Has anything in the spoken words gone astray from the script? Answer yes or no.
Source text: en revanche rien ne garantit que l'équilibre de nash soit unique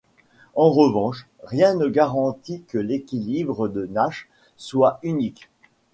no